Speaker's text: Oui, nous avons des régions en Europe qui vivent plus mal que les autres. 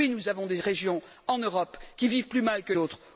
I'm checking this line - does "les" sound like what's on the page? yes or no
no